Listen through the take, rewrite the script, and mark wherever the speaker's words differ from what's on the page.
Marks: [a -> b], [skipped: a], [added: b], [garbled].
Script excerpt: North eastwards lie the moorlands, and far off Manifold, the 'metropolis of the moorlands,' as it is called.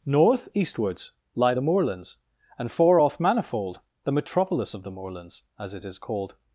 North eastwards lie the moorlands, and far off Manifold, the 'metropolis of the moorlands,' as it is called.